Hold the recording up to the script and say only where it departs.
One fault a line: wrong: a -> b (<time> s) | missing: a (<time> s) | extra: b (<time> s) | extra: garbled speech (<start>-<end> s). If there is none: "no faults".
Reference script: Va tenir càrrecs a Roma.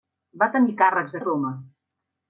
no faults